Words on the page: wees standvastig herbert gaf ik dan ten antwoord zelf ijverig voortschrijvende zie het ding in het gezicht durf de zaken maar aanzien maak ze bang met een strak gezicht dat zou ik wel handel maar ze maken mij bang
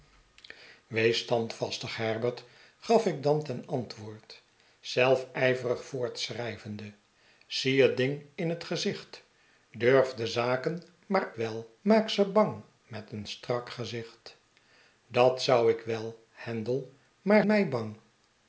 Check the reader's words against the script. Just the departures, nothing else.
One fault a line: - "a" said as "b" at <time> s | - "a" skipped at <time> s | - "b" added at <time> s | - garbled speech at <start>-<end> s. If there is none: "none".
- "aanzien" said as "wel" at 11.3 s
- "ze maken" skipped at 17.5 s